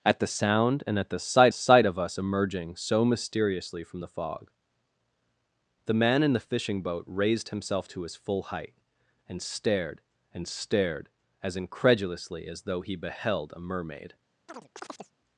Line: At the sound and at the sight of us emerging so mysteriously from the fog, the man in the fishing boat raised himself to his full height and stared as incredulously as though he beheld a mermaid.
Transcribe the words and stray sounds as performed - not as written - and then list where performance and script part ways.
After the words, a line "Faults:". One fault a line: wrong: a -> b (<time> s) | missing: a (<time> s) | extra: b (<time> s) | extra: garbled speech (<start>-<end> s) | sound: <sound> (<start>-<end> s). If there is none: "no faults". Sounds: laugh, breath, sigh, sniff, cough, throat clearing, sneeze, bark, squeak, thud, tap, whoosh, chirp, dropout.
At the sound and at the sight sight of us emerging so mysteriously from the fog, the man in the fishing boat raised himself to his full height and stared and stared as incredulously as though he beheld a mermaid.
Faults:
extra: sight (1.5 s)
extra: and stared (10.3 s)
sound: chirp (14.5-15.1 s)